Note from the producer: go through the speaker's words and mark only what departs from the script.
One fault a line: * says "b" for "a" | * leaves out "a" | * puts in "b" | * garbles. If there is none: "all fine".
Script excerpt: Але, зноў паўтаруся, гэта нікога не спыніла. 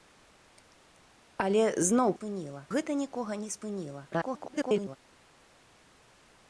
* says "спыніла" for "паўтаруся"
* garbles